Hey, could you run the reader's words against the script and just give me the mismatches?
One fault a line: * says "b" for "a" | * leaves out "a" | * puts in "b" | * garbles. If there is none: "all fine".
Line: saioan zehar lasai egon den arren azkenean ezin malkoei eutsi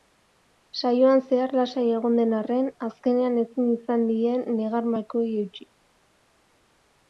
* puts in "izan die negar"